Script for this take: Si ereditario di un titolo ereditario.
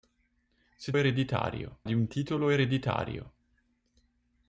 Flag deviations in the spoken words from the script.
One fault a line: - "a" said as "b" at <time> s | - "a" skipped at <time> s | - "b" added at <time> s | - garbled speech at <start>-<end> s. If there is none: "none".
none